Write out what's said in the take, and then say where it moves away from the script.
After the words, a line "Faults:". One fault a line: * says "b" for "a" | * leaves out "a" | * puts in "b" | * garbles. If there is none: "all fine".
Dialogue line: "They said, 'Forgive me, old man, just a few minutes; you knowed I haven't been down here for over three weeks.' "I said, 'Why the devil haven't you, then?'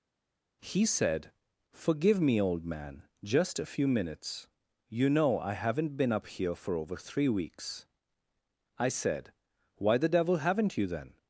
"He said, 'Forgive me, old man, just a few minutes; you know I haven't been up here for over three weeks.' "I said, 'Why the devil haven't you, then?'
Faults:
* says "He" for "They"
* says "know" for "knowed"
* says "up" for "down"